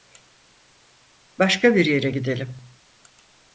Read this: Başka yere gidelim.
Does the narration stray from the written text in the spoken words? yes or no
yes